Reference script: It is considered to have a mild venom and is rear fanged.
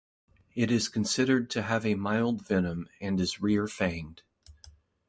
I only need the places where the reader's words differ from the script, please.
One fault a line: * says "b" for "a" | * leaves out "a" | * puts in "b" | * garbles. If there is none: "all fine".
all fine